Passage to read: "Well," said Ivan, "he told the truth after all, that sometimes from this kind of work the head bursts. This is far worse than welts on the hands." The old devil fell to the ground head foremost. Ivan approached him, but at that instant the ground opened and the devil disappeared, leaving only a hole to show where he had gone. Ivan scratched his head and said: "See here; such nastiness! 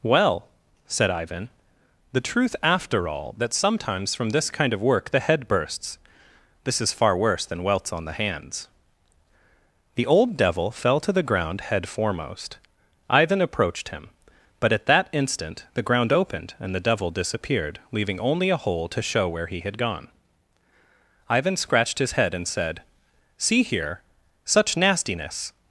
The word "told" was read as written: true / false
false